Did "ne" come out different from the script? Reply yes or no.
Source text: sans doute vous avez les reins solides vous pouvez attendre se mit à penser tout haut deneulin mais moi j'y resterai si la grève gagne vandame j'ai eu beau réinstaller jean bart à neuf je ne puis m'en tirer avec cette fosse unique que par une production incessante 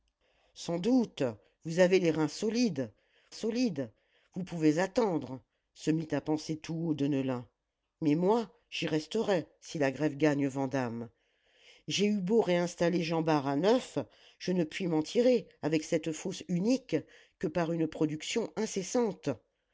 no